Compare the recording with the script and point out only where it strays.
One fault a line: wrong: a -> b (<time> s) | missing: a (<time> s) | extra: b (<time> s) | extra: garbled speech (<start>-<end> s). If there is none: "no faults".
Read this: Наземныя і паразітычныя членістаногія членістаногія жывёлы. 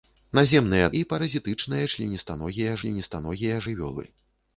no faults